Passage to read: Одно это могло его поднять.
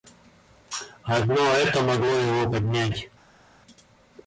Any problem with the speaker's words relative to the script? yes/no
no